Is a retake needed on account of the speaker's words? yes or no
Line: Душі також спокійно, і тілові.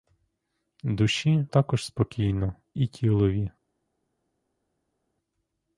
no